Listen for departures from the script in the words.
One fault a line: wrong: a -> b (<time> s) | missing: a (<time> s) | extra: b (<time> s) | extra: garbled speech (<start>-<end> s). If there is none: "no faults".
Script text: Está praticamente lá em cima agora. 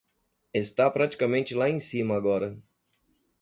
no faults